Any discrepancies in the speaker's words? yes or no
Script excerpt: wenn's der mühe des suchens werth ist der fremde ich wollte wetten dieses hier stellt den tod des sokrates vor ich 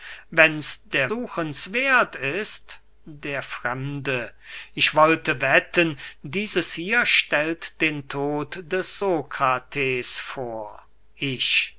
yes